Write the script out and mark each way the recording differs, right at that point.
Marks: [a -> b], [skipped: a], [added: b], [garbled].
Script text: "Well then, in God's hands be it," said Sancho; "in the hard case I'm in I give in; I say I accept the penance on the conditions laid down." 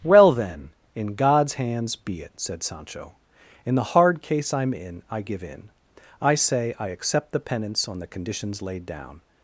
"Well then, in God's hands be it," said Sancho; "in the hard case I'm in I give in; I say I accept the penance on the conditions laid down."